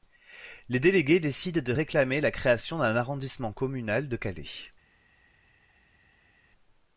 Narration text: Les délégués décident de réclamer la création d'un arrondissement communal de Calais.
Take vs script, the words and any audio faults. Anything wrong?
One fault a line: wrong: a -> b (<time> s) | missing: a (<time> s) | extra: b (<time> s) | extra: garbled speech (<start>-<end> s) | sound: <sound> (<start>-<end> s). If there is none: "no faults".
no faults